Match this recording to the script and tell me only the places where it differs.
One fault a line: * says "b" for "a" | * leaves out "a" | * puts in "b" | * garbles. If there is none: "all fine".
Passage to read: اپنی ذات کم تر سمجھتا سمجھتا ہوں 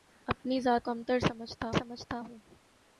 all fine